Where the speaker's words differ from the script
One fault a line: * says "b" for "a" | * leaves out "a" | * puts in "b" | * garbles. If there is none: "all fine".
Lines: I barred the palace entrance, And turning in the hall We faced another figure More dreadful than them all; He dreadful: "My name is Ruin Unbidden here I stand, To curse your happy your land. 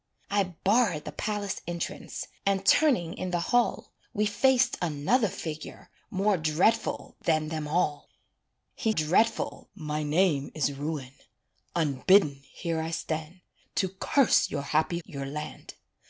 all fine